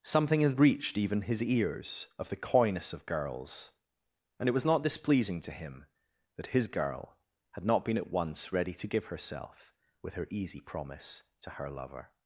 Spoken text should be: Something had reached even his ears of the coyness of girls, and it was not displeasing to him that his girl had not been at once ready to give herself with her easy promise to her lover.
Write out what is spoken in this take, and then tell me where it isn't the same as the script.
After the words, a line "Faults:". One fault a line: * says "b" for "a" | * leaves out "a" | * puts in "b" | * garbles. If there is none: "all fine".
Something had reached even his ears of the coyness of girls, and it was not displeasing to him that his girl had not been at once ready to give herself with her easy promise to her lover.
Faults:
all fine